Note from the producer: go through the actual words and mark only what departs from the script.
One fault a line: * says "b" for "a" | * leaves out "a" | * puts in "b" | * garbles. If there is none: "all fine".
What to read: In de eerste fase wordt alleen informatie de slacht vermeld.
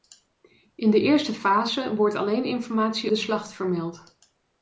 all fine